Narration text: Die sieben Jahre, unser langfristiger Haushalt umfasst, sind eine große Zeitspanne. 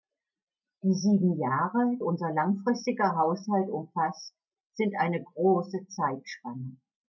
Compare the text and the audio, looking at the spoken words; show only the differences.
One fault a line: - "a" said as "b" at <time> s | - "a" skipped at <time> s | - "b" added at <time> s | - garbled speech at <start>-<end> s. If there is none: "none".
none